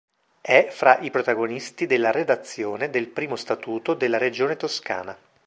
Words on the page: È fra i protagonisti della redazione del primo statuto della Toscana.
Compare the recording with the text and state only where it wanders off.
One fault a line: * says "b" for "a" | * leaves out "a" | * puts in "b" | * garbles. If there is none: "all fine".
* puts in "Regione"